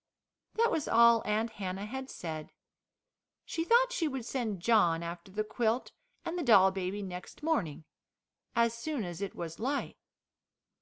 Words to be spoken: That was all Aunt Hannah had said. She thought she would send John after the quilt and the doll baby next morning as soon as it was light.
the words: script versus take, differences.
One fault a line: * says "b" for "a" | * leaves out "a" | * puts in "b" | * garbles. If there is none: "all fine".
all fine